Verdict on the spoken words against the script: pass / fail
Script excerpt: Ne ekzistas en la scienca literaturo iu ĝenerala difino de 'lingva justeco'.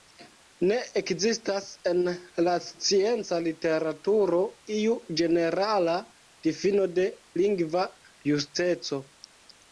pass